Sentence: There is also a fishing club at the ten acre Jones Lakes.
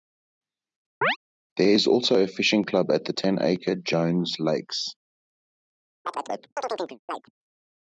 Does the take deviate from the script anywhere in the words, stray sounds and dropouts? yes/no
yes